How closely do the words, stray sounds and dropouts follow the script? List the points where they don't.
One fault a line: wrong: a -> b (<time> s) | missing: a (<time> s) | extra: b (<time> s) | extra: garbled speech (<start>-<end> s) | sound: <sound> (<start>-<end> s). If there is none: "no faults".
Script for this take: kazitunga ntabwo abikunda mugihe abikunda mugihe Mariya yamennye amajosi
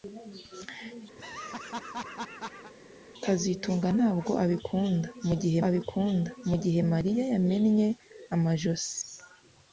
sound: laugh (1.2-2.7 s)